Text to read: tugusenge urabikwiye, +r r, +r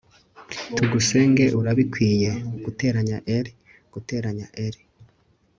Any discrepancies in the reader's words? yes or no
yes